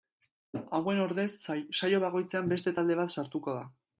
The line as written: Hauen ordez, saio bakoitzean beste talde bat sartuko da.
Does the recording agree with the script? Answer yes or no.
yes